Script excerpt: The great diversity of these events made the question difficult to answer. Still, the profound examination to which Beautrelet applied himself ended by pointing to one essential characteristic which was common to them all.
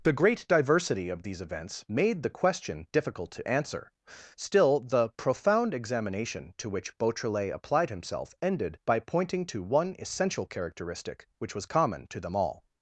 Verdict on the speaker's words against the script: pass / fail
pass